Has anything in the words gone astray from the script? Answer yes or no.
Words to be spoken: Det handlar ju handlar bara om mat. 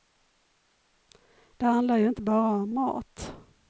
yes